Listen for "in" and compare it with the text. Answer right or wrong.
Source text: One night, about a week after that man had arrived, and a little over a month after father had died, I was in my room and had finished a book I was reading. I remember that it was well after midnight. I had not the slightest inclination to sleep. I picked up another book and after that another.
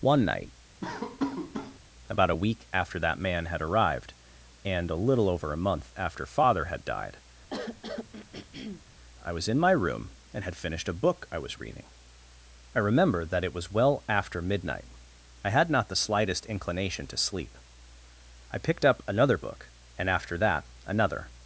right